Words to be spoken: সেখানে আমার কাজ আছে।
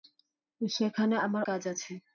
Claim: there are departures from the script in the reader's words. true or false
false